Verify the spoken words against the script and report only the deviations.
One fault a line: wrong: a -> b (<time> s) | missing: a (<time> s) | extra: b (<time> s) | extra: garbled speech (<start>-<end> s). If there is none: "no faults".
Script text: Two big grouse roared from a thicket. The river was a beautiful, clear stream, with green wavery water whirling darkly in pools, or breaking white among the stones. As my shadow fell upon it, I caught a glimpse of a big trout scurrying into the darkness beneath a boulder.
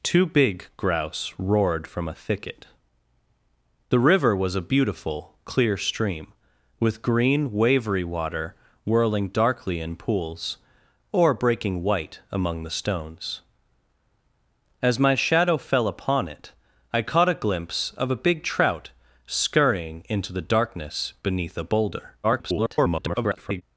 extra: garbled speech (22.2-23.6 s)